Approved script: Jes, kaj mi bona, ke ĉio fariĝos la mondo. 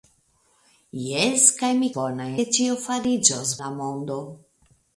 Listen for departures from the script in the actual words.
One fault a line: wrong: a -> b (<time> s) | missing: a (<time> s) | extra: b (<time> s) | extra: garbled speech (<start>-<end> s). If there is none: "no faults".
no faults